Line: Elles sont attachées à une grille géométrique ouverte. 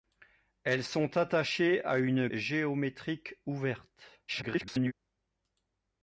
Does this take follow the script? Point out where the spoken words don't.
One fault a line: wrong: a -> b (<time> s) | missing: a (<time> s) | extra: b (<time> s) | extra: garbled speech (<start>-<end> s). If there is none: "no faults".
missing: grille (2.3 s)
extra: garbled speech (4.3-4.9 s)